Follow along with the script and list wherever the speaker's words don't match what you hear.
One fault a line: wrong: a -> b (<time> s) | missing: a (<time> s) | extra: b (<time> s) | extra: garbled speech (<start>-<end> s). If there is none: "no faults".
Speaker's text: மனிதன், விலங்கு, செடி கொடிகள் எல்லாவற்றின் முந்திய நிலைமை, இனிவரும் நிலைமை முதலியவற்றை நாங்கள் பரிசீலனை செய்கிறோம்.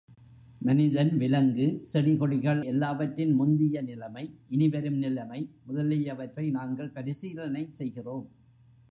no faults